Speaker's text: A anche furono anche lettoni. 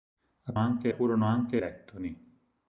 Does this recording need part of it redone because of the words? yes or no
no